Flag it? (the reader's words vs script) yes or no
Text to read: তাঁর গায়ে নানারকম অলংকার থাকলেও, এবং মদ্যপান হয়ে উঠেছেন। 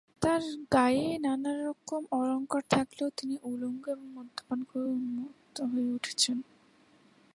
yes